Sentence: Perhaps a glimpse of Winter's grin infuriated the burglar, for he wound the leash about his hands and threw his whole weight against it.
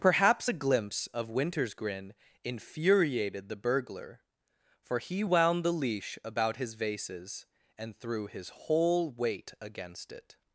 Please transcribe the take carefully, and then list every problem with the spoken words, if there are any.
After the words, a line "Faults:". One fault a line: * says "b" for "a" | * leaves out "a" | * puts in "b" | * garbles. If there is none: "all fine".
Perhaps a glimpse of Winter's grin infuriated the burglar, for he wound the leash about his vases and threw his whole weight against it.
Faults:
* says "vases" for "hands"